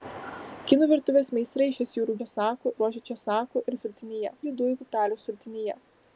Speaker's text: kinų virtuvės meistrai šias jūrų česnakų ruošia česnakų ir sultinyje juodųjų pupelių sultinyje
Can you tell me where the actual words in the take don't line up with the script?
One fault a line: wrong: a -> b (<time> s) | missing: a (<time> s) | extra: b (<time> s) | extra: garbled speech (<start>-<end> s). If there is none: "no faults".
no faults